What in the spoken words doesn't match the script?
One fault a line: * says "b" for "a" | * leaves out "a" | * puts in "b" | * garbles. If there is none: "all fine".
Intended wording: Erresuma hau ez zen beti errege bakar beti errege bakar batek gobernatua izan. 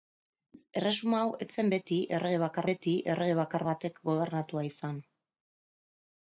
all fine